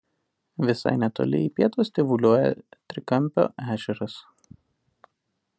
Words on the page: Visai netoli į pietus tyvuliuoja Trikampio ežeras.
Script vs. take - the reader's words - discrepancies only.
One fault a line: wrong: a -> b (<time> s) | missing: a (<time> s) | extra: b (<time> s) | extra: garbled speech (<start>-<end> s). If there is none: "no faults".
no faults